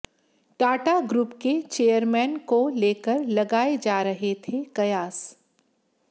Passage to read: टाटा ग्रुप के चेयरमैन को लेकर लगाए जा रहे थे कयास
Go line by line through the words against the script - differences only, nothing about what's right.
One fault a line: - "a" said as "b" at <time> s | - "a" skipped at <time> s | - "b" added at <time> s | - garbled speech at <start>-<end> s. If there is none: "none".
none